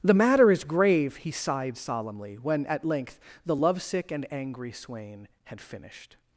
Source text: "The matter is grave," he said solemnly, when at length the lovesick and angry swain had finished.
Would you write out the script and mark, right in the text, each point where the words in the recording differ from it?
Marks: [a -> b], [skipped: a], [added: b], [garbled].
"The matter is grave," he [said -> sighed] solemnly, when at length the lovesick and angry swain had finished.